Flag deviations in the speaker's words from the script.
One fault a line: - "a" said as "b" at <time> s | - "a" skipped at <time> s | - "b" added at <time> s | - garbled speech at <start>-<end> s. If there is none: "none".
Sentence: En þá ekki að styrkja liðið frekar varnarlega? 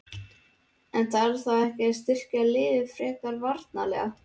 - "þarf" added at 1.1 s